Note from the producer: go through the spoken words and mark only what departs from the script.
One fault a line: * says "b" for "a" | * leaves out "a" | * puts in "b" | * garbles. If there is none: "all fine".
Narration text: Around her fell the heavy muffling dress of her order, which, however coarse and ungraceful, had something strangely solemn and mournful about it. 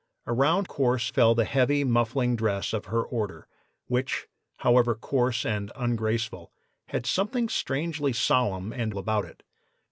* says "coarse" for "her"
* leaves out "mournful"